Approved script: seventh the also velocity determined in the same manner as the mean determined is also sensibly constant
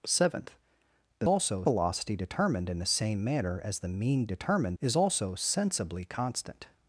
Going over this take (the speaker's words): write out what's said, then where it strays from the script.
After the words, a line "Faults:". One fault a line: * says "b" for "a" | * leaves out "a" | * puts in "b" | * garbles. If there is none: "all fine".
seventh the also velocity determined in the same manner as the mean determined is also sensibly constant
Faults:
all fine